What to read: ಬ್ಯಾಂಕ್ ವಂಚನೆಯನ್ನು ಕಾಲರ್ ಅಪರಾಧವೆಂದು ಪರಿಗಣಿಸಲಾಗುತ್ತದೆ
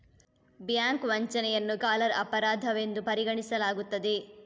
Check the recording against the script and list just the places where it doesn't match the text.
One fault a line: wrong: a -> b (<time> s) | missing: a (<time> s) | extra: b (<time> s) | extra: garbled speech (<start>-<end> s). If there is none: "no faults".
no faults